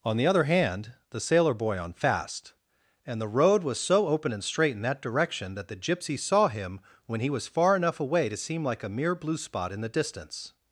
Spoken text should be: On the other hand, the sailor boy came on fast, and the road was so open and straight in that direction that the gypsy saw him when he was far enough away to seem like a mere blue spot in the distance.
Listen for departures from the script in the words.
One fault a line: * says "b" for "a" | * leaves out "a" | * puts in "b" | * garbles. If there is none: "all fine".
* leaves out "came"